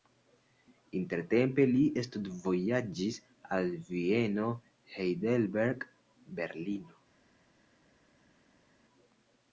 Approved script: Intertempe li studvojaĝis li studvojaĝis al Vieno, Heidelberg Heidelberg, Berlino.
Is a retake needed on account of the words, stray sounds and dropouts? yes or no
yes